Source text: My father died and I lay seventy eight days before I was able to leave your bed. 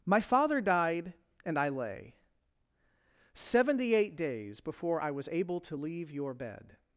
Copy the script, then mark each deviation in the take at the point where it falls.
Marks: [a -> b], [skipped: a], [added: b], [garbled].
My father died and I lay seventy eight days before I was able to leave your bed.